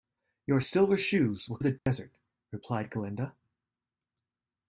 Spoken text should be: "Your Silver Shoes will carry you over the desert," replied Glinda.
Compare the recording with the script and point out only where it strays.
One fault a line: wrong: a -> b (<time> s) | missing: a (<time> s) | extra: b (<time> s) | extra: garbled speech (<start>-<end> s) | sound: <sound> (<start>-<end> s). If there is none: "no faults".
missing: carry you over (1.6 s)
sound: dropout (1.8-1.9 s)